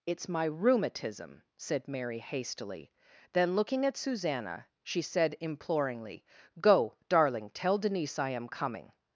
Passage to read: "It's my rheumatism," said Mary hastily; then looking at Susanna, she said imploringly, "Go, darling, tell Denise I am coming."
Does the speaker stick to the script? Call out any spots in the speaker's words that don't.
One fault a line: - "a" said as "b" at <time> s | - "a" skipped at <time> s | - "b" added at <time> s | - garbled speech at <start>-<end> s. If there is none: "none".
none